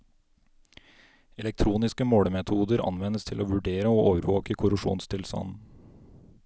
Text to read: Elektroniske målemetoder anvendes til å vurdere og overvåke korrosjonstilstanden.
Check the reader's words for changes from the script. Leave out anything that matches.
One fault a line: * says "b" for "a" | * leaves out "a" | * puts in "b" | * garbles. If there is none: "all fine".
all fine